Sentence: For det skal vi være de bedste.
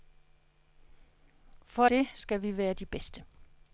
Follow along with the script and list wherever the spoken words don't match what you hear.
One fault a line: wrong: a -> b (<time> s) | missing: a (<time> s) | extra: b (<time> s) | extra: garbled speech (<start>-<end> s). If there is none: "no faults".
no faults